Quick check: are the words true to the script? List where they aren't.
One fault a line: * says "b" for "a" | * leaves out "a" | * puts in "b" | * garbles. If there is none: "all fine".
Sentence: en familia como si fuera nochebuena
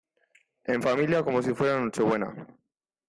all fine